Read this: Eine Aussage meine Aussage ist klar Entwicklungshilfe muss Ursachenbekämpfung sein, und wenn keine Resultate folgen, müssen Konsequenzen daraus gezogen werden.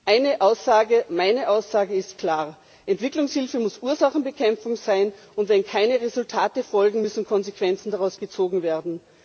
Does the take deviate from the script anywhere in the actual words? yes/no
no